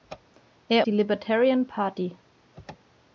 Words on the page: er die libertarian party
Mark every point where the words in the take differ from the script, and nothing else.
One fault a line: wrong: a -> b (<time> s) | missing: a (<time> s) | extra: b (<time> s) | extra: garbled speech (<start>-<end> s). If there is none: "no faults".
no faults